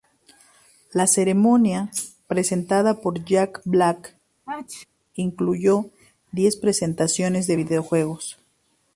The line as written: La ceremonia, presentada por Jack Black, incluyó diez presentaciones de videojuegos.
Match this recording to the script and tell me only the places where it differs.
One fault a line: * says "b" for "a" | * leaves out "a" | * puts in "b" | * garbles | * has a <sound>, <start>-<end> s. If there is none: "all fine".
* has a sneeze, 4.5-4.9 s